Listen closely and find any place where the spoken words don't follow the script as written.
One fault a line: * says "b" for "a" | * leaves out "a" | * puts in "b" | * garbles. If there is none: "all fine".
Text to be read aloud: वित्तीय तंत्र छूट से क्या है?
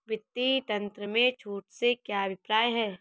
* puts in "में"
* puts in "अभिप्राय"